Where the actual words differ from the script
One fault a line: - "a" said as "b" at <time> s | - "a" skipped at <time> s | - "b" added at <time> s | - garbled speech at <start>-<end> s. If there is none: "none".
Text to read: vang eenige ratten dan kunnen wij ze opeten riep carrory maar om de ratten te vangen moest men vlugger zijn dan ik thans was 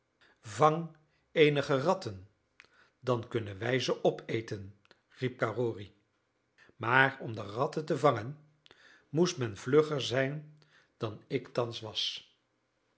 none